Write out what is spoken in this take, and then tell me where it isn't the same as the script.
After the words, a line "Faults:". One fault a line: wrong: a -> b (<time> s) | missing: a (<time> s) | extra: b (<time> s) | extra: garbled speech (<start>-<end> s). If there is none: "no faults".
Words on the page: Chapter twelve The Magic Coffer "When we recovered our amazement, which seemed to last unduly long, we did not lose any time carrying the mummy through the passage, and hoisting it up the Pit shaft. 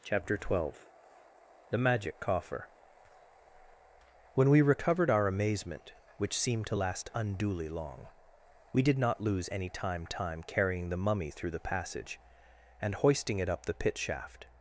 Chapter twelve The Magic Coffer "When we recovered our amazement, which seemed to last unduly long, we did not lose any time time carrying the mummy through the passage, and hoisting it up the Pit shaft.
Faults:
extra: time (10.0 s)